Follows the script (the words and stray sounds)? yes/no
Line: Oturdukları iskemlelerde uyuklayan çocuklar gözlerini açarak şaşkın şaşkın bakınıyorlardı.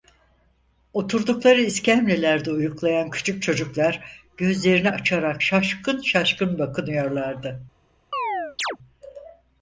no